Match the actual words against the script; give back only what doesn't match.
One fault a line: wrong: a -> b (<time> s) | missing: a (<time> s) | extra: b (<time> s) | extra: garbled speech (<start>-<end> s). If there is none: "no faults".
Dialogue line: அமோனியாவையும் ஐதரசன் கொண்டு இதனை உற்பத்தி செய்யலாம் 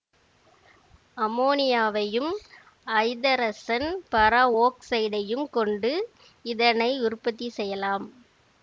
extra: பர ஒக்சைடையும் (4.1 s)